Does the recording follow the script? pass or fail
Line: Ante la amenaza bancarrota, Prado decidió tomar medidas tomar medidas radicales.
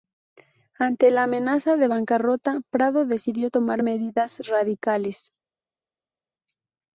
fail